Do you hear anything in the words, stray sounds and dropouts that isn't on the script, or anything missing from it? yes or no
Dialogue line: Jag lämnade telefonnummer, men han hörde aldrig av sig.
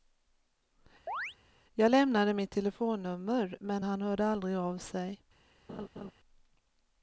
yes